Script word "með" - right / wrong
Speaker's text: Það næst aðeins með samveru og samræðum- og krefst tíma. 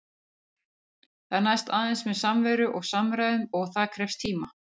right